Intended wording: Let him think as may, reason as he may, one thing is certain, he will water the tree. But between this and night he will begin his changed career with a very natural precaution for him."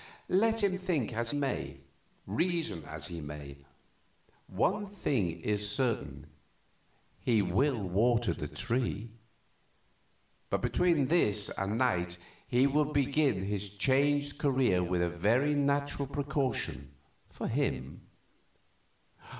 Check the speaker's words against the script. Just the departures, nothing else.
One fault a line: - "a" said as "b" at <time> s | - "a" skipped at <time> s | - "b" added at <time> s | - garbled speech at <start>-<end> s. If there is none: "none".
none